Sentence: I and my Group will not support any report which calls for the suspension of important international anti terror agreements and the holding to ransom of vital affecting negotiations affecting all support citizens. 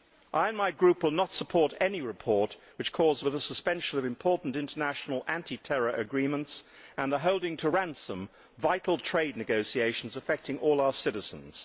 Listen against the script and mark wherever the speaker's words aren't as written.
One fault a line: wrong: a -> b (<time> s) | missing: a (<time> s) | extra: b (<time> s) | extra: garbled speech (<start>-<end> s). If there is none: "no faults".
wrong: affecting -> trade (9.0 s)
wrong: support -> our (10.8 s)